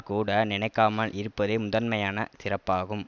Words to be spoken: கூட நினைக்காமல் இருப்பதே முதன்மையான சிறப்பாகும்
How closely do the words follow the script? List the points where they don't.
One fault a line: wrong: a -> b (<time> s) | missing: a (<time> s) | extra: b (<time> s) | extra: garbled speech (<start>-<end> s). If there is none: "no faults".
no faults